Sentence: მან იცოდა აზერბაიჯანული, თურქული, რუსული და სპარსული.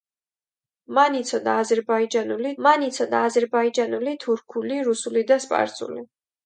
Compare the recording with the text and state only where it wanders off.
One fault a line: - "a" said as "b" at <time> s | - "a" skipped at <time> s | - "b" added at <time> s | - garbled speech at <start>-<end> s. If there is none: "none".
- "მან იცოდა აზერბაიჯანული" added at 2.7 s